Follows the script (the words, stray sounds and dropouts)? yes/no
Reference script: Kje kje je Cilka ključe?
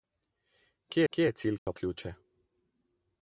no